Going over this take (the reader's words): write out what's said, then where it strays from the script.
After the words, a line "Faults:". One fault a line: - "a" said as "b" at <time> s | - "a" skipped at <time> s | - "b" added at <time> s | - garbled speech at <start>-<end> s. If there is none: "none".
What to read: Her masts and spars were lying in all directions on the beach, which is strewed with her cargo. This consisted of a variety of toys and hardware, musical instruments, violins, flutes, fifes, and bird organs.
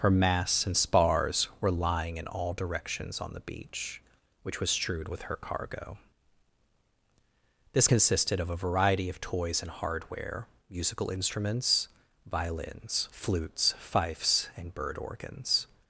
Her masts and spars were lying in all directions on the beach, which was strewed with her cargo. This consisted of a variety of toys and hardware, musical instruments, violins, flutes, fifes, and bird organs.
Faults:
- "is" said as "was" at 4.6 s